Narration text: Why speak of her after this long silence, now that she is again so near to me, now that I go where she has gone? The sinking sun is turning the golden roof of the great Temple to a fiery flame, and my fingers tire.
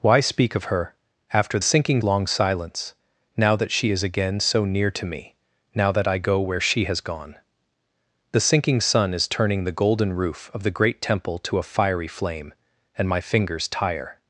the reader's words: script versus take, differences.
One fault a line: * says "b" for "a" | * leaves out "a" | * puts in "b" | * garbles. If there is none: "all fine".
* says "sinking" for "this"